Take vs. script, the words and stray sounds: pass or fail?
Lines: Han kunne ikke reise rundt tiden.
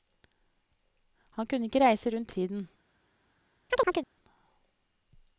fail